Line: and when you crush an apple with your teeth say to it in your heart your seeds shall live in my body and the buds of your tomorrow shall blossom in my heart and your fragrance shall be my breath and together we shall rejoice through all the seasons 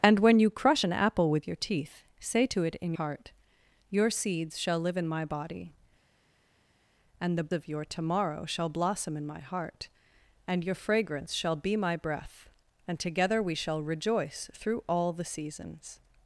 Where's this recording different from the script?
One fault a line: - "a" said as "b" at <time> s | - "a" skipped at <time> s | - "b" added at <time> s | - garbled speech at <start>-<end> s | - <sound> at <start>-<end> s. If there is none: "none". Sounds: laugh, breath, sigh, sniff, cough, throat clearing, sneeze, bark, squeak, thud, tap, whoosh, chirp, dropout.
- "your" skipped at 2.9 s
- "buds" skipped at 7.5 s